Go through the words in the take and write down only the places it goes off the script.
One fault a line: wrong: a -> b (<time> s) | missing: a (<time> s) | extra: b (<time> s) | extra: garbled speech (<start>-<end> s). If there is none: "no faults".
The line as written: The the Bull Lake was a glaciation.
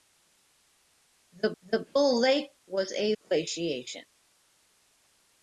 no faults